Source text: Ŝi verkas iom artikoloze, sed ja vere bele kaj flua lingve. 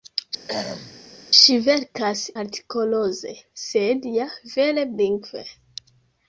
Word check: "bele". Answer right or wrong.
wrong